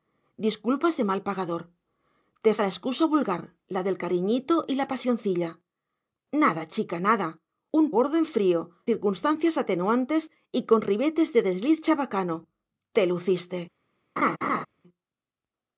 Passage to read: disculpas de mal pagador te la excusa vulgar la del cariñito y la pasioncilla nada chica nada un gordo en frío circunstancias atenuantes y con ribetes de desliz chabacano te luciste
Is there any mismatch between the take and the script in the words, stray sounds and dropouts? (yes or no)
yes